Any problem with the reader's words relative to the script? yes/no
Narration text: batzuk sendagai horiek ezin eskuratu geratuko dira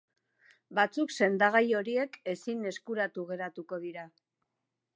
no